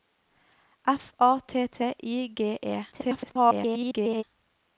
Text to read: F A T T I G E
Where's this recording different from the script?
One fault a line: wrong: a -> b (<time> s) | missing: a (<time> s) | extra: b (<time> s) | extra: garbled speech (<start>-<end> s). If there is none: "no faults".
extra: garbled speech (2.9-4.2 s)